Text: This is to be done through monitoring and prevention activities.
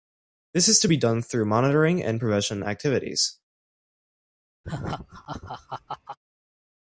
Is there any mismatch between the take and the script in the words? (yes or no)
no